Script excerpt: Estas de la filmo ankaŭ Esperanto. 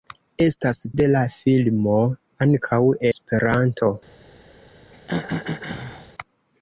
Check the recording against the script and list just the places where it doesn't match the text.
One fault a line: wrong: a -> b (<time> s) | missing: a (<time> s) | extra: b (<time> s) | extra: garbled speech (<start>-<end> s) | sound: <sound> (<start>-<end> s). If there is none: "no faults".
sound: throat clearing (4.9-6.1 s)